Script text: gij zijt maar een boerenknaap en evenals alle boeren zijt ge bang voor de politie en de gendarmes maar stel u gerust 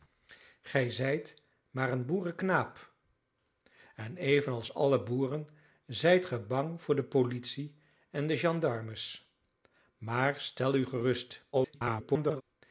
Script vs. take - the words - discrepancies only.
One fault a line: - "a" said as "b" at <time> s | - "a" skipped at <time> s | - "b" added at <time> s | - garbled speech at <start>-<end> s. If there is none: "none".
- garbled speech at 11.5-12.4 s